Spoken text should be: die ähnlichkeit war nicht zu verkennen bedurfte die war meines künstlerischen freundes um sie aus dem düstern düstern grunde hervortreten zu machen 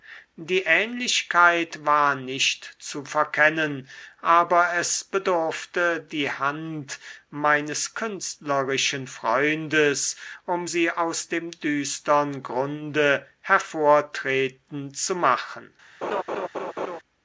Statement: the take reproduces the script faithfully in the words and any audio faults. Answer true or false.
false